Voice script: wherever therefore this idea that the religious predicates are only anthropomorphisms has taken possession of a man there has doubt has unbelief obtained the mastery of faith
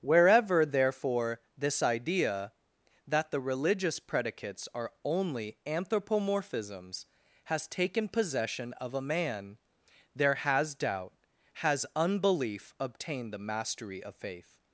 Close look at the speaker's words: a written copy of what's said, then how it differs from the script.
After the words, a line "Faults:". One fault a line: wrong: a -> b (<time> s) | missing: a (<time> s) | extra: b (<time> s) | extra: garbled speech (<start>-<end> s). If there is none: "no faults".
wherever therefore this idea that the religious predicates are only anthropomorphisms has taken possession of a man there has doubt has unbelief obtained the mastery of faith
Faults:
no faults